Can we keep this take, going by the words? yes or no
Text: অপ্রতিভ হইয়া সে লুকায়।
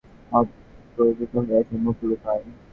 no